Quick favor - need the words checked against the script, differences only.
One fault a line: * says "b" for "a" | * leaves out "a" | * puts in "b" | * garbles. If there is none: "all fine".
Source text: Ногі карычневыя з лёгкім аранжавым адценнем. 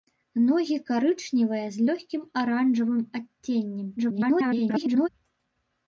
* garbles